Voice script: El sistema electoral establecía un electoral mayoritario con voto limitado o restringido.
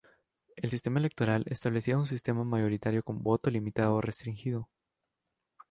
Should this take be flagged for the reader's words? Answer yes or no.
yes